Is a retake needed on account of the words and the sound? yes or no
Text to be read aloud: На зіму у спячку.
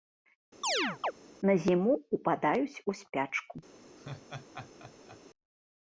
yes